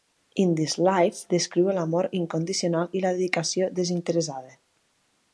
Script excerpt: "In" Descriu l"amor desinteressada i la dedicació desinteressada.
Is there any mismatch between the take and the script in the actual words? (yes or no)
yes